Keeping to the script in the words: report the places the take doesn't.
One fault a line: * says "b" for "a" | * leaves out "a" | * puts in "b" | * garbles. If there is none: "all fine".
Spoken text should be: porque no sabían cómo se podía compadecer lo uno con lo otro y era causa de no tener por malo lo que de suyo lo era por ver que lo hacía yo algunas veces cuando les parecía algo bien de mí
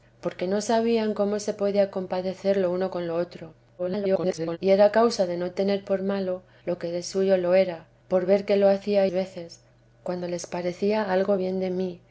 * garbles
* leaves out "yo algunas"